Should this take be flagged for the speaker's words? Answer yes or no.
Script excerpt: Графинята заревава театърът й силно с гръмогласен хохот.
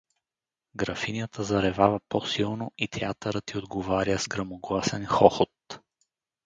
yes